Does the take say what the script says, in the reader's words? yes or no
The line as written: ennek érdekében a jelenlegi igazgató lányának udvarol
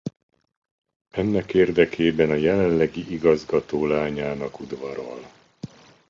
yes